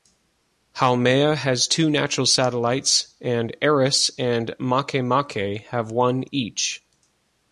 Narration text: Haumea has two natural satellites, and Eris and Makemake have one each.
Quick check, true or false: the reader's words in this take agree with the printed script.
true